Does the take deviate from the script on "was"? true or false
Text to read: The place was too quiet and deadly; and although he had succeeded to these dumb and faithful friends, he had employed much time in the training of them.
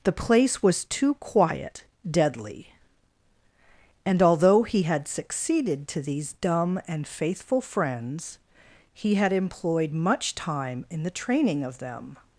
false